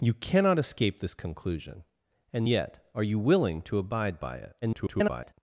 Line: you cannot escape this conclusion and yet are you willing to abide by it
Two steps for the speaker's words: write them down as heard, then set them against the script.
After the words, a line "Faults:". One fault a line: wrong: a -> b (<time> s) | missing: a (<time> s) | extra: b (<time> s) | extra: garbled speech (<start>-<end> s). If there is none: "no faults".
you cannot escape this conclusion and yet are you willing to abide by it [garbled]
Faults:
extra: garbled speech (4.6-5.3 s)